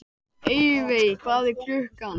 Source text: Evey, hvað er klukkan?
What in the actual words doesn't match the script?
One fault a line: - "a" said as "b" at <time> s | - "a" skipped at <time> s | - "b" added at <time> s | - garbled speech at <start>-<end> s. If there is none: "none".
none